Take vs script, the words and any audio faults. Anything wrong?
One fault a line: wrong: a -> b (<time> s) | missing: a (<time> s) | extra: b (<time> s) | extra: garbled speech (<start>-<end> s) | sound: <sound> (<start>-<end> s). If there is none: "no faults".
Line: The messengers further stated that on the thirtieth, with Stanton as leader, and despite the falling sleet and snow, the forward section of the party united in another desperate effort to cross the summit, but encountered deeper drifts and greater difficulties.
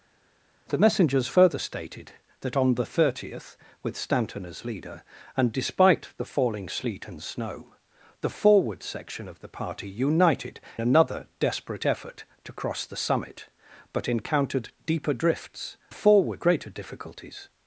missing: in (10.6 s)
wrong: and -> forward (15.9 s)